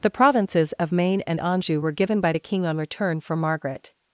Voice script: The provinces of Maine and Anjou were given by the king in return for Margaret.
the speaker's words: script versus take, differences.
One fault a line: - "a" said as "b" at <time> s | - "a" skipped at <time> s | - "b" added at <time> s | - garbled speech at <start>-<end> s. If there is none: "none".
- "in" said as "on" at 2.6 s